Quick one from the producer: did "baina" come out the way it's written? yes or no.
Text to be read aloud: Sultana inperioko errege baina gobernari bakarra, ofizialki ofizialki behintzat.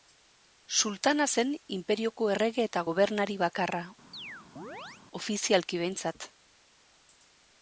no